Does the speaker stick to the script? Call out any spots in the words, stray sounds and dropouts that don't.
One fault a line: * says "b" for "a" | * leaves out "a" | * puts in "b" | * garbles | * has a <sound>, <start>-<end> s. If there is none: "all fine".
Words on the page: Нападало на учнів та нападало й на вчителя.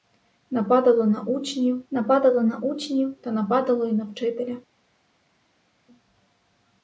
* puts in "нападало на учнів"